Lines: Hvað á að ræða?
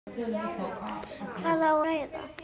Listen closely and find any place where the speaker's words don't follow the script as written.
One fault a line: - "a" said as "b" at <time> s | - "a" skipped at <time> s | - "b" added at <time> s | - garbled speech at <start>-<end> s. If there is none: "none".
- "að" skipped at 1.7 s